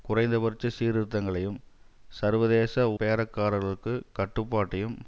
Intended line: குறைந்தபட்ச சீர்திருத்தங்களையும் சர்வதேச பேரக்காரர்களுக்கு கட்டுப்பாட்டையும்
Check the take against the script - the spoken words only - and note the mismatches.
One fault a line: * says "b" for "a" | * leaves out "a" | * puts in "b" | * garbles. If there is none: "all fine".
all fine